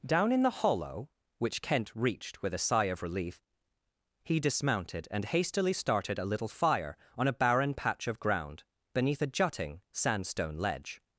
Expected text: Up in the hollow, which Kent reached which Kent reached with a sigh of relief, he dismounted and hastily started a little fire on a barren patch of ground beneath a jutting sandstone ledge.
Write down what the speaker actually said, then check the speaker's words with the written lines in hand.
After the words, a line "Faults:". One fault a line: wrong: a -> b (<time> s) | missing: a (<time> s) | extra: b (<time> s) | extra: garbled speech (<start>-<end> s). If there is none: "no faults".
Down in the hollow, which Kent reached with a sigh of relief, he dismounted and hastily started a little fire on a barren patch of ground beneath a jutting sandstone ledge.
Faults:
wrong: Up -> Down (0.1 s)
missing: which Kent reached (2.4 s)